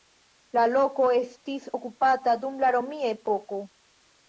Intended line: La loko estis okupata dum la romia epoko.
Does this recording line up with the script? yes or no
yes